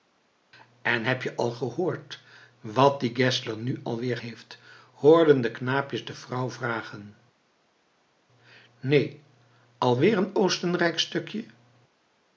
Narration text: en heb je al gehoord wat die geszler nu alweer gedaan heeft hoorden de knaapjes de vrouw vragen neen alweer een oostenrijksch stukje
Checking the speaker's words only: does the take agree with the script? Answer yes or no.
no